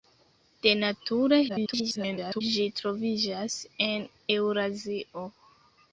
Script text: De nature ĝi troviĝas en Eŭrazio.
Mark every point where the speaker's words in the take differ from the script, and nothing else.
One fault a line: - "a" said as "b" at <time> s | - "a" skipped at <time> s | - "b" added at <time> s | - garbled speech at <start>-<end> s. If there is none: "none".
- garbled speech at 1.5-2.4 s